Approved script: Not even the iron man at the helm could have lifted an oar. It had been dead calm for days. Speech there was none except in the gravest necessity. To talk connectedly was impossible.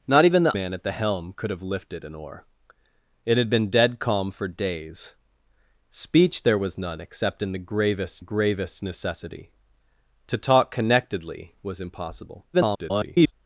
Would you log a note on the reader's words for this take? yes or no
yes